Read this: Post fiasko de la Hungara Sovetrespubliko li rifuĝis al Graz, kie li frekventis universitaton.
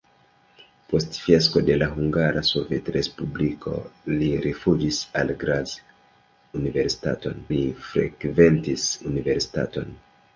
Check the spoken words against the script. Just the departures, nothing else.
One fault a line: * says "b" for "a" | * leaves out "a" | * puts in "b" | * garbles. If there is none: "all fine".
* says "universitaton" for "kie"